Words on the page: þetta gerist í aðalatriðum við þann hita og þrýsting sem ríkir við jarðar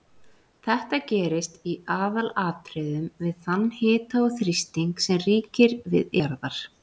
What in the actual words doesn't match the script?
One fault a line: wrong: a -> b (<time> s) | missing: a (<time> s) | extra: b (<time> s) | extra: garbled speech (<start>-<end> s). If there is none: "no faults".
no faults